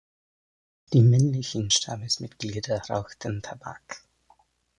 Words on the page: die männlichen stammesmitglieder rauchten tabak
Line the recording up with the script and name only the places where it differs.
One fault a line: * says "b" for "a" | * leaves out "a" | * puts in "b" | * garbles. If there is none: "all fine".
all fine